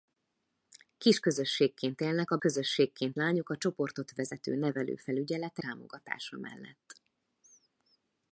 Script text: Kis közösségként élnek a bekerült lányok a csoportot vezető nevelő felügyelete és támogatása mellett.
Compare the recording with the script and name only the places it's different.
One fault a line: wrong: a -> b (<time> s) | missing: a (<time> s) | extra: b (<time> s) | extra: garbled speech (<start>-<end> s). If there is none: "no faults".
wrong: bekerült -> közösségként (2.4 s)
missing: és (5.6 s)